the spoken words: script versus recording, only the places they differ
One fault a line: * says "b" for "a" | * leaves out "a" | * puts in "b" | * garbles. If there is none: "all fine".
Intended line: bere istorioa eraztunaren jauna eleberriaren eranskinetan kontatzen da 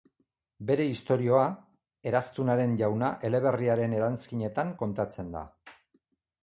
all fine